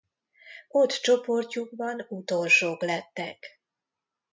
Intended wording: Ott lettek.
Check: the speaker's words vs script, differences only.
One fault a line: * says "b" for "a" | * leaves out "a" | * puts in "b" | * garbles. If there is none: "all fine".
* puts in "csoportjukban utolsók"